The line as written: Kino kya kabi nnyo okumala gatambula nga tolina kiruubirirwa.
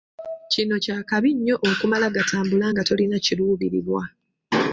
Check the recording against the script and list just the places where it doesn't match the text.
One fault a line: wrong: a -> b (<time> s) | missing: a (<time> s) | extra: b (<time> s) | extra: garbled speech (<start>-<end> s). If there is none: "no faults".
no faults